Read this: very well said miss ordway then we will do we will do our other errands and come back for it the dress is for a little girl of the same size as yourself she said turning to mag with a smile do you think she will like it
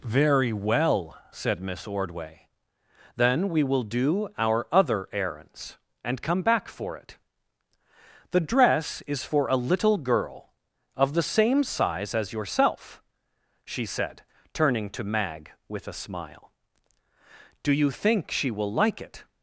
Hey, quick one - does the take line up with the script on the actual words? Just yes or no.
no